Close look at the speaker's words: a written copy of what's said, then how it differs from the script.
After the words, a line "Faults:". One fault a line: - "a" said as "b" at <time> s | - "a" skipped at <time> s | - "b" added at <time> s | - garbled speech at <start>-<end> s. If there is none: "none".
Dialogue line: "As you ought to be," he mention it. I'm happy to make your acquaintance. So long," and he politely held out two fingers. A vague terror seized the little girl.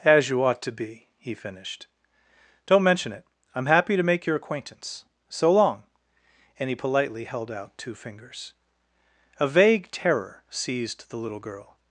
"As you ought to be," he finished. "Don't mention it. I'm happy to make your acquaintance. So long," and he politely held out two fingers. A vague terror seized the little girl.
Faults:
- "finished Don't" added at 1.3 s